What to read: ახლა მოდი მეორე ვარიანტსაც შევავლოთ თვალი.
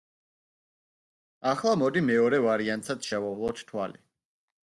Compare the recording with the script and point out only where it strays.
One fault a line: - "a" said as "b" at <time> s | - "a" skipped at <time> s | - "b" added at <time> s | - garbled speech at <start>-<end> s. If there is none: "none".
none